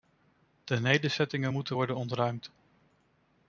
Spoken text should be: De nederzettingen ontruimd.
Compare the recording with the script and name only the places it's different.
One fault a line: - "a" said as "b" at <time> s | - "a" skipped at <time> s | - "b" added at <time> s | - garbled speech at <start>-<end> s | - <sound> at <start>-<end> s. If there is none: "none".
- "moeten worden" added at 1.5 s